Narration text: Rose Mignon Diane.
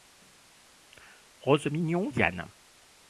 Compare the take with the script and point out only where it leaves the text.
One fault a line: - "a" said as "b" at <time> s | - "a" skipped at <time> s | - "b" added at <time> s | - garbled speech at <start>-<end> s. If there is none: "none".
none